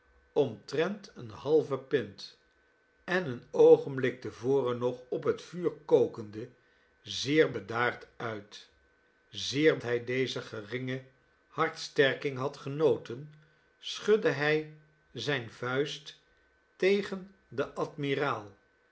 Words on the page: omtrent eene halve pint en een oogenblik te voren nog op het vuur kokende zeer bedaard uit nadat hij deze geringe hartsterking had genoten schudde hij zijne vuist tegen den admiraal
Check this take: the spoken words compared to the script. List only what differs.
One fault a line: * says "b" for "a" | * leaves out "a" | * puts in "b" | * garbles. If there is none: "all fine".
* says "zeer" for "nadat"